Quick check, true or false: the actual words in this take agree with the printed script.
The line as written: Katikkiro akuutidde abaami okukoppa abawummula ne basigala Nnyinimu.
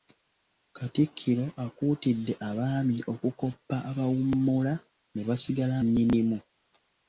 true